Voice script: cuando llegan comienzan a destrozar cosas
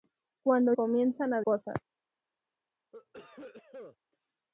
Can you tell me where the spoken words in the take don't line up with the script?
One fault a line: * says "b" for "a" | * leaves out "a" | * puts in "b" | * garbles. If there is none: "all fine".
* leaves out "llegan"
* leaves out "destrozar"